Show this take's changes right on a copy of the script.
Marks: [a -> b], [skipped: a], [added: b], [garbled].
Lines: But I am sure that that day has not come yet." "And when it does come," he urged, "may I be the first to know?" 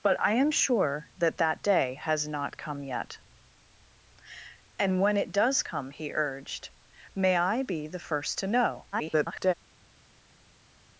But I am sure that that day has not come yet." "And when it does come," he urged, "may I be the first to know?" [garbled]